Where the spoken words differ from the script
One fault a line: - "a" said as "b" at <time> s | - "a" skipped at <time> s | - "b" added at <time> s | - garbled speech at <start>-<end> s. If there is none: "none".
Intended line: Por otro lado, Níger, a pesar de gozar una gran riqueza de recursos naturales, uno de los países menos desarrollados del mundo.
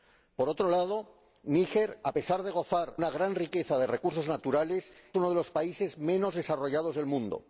none